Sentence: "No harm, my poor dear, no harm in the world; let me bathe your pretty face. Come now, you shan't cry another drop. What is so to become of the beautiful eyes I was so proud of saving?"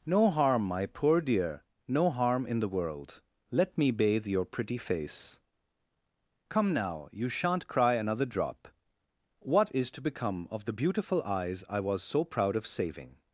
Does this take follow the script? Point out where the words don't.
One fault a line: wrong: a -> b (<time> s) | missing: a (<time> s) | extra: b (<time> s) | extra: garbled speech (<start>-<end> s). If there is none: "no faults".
missing: so (9.9 s)